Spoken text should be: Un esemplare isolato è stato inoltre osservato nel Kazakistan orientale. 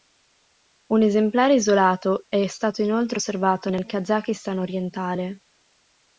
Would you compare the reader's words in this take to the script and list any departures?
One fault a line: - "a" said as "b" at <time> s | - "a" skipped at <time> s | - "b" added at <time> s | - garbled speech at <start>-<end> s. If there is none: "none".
none